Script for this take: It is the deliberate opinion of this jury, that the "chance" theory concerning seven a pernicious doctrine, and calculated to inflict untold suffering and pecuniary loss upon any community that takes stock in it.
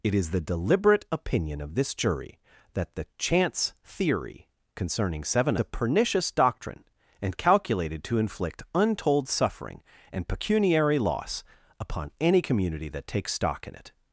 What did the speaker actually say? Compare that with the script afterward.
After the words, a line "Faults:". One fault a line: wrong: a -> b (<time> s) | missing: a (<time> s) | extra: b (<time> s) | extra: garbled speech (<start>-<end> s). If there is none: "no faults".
It is the deliberate opinion of this jury, that the "chance" theory concerning seven a pernicious doctrine, and calculated to inflict untold suffering and pecuniary loss upon any community that takes stock in it.
Faults:
no faults